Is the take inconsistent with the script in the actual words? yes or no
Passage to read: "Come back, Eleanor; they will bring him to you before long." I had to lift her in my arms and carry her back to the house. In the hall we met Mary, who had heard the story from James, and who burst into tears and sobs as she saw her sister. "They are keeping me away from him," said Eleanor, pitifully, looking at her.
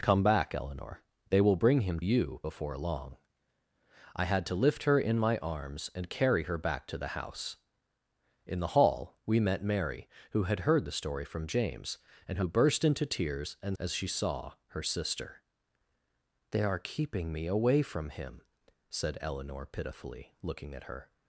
yes